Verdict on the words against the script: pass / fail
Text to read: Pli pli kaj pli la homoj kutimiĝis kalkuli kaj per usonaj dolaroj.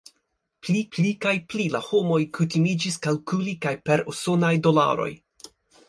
pass